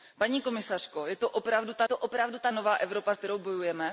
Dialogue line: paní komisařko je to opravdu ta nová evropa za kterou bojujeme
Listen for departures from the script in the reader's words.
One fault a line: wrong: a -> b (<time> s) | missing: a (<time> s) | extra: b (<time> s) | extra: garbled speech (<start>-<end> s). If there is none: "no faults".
extra: to opravdu ta (1.8 s)
missing: za (3.1 s)